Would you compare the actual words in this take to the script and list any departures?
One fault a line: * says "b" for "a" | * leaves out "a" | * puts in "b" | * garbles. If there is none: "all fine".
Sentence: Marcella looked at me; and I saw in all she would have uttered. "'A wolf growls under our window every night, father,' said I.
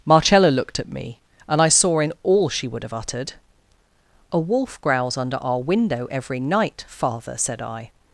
all fine